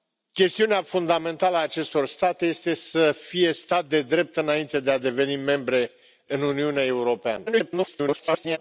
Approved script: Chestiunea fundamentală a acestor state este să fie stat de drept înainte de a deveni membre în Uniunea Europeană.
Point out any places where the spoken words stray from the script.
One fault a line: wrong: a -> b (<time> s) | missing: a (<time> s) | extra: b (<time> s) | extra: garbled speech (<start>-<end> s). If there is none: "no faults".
extra: garbled speech (7.5-8.6 s)